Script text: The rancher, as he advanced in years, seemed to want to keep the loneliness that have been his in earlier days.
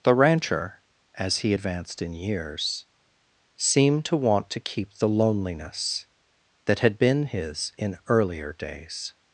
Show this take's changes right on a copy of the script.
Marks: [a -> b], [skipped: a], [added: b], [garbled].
The rancher, as he advanced in years, seemed to want to keep the loneliness that [have -> had] been his in earlier days.